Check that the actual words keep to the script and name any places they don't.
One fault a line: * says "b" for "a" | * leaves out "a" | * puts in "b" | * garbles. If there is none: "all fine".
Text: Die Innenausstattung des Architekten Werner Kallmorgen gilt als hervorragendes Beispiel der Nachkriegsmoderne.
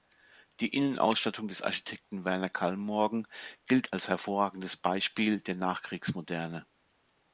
all fine